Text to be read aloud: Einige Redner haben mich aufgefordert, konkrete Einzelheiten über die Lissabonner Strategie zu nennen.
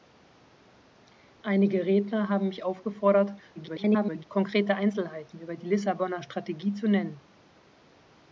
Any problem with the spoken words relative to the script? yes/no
yes